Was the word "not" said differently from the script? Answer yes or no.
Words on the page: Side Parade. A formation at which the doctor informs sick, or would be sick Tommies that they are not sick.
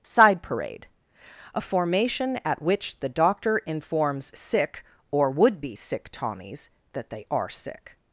yes